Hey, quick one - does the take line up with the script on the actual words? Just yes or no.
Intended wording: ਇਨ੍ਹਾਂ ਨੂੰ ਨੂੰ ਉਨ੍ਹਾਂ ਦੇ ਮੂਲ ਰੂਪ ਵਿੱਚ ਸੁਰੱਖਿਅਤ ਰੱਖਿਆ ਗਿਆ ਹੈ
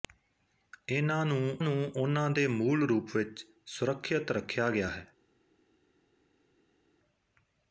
yes